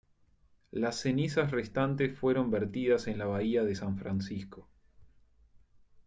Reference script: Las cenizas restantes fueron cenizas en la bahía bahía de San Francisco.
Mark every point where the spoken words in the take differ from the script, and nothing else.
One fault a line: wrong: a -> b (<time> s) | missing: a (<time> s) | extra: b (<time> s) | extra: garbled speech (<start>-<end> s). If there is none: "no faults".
wrong: cenizas -> vertidas (2.5 s)
missing: bahía (3.6 s)